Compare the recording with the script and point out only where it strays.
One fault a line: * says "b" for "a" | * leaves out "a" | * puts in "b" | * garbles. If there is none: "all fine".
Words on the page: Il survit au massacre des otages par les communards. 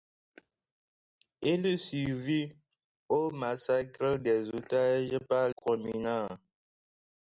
* leaves out "les"